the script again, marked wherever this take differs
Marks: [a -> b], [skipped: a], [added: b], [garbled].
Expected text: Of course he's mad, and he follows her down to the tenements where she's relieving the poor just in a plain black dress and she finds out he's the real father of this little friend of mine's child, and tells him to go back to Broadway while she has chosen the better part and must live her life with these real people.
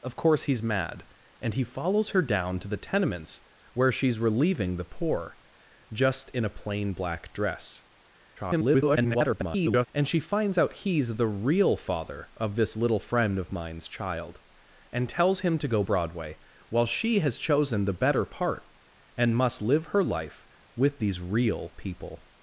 Of course he's mad, and he follows her down to the tenements where she's relieving the poor just in a plain black dress [garbled] and she finds out he's the real father of this little friend of mine's child, and tells him to go [skipped: back to] Broadway while she has chosen the better part and must live her life with these real people.